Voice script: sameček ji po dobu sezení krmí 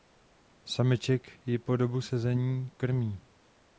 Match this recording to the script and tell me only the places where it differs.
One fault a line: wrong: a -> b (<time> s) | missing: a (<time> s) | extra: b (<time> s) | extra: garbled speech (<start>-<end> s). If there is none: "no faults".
no faults